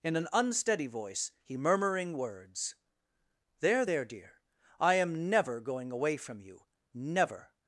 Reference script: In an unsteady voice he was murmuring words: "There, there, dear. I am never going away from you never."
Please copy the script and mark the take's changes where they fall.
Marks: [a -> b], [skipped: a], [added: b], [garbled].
In an unsteady voice he [skipped: was] murmuring words: "There, there, dear. I am never going away from you never."